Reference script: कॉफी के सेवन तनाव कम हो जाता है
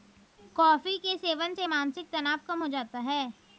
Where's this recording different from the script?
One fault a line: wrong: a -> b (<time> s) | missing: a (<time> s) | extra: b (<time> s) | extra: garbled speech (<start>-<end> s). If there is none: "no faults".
extra: से मानसिक (1.5 s)